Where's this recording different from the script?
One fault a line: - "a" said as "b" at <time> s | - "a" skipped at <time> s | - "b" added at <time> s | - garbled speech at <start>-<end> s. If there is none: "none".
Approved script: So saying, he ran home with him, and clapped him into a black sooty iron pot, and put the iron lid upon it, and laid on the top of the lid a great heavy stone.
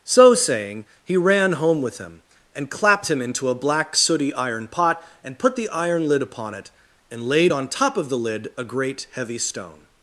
- "the" skipped at 7.7 s